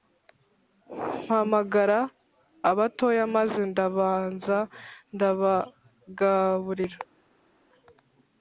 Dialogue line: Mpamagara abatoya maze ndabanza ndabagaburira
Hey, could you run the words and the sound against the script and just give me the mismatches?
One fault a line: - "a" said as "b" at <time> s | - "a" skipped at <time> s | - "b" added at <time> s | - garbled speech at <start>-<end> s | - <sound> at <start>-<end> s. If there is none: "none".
none